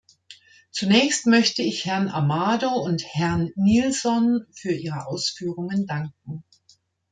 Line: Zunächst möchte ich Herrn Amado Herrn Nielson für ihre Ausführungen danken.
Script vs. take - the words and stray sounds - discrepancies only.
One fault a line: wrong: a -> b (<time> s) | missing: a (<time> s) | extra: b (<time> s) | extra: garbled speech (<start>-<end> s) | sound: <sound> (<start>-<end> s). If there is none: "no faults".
extra: und (2.7 s)